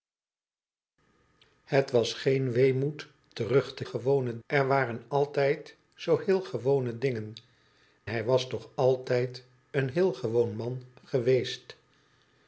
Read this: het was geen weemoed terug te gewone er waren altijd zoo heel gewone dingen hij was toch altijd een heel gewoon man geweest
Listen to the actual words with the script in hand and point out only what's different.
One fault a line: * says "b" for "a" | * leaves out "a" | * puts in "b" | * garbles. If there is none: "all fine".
all fine